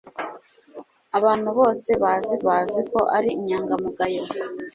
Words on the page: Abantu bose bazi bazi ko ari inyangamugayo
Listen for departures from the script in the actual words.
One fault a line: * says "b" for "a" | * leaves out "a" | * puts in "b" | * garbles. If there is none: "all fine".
all fine